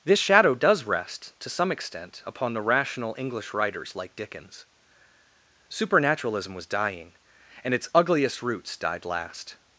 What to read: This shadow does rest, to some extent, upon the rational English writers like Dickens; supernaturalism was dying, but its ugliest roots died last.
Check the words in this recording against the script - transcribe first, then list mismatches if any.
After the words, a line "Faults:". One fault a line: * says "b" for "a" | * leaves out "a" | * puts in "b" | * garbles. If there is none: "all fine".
This shadow does rest, to some extent, upon the rational English writers like Dickens; supernaturalism was dying, and its ugliest roots died last.
Faults:
* says "and" for "but"